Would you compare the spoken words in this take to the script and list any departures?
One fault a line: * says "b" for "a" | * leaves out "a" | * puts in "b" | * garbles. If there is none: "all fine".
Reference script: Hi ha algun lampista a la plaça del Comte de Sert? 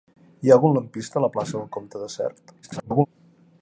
* garbles